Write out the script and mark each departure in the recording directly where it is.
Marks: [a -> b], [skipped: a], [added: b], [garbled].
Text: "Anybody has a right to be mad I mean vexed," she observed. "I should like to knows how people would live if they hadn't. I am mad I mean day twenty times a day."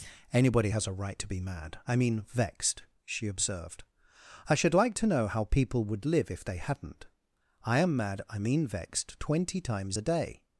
"Anybody has a right to be mad I mean vexed," she observed. "I should like to [knows -> know] how people would live if they hadn't. I am mad I mean [day -> vexed] twenty times a day."